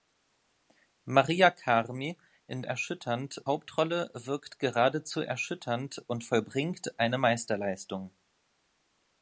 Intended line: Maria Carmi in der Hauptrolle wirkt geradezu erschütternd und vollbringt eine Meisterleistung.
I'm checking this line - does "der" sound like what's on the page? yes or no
no